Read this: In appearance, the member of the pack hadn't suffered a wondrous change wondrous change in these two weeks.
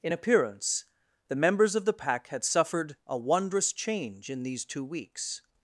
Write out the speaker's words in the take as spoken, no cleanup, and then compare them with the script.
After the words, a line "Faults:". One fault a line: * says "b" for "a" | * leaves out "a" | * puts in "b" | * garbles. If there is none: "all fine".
In appearance, the members of the pack had suffered a wondrous change in these two weeks.
Faults:
* says "members" for "member"
* says "had" for "hadn't"
* leaves out "wondrous change"